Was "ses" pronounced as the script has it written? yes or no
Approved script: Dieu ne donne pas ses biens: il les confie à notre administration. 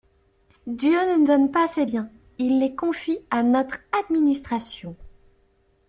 yes